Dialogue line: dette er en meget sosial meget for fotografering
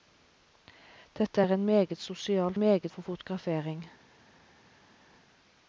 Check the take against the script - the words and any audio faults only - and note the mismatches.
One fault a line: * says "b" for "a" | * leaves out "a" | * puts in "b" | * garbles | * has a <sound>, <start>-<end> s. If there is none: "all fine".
all fine